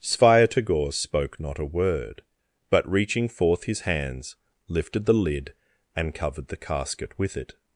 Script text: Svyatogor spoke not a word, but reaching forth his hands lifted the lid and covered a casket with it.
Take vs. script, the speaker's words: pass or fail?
fail